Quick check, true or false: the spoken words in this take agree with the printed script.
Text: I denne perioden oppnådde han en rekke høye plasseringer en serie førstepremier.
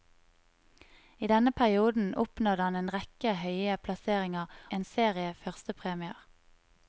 true